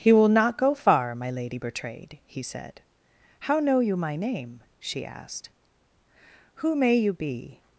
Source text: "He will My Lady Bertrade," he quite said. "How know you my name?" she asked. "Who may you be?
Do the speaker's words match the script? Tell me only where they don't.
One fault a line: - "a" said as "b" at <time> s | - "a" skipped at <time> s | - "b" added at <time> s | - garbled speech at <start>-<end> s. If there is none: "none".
- "not go far" added at 0.3 s
- "quite" skipped at 2.4 s